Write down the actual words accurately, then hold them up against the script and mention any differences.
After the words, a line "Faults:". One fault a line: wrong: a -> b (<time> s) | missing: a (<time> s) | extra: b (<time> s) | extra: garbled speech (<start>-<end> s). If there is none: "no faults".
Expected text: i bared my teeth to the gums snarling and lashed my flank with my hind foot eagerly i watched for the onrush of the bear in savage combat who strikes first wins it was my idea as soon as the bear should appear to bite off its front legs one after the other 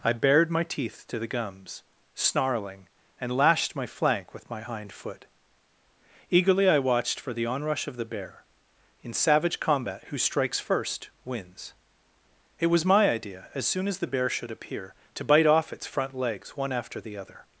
i bared my teeth to the gums snarling and lashed my flank with my hind foot eagerly i watched for the onrush of the bear in savage combat who strikes first wins it was my idea as soon as the bear should appear to bite off its front legs one after the other
Faults:
no faults